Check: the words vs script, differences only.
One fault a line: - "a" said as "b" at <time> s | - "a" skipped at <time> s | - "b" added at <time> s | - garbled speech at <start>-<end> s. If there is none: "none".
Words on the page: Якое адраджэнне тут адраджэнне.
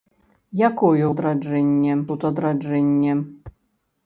none